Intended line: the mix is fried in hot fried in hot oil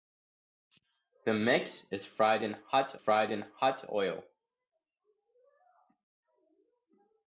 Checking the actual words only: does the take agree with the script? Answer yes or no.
yes